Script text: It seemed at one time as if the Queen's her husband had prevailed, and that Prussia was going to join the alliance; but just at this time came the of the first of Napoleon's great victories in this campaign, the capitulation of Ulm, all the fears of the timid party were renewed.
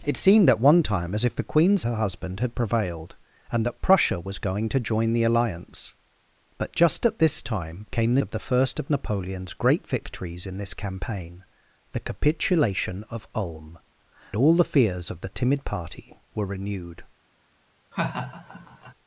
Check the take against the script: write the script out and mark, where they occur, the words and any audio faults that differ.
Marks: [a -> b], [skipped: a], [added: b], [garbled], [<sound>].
It seemed at one time as if the Queen's her husband had prevailed, and that Prussia was going to join the alliance; but just at this time came the of the first of Napoleon's great victories in this campaign, the capitulation of Ulm, all the fears of the timid party were renewed. [laugh]